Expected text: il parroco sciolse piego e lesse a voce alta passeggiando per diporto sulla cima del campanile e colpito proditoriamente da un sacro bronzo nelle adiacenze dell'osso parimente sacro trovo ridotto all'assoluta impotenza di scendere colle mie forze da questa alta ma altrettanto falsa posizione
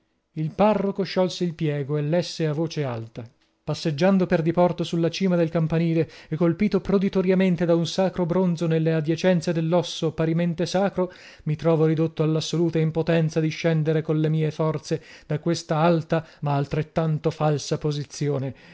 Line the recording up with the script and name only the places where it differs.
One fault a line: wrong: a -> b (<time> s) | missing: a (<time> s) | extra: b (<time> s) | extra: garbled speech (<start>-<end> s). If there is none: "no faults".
extra: il (1.4 s)
extra: mi (11.4 s)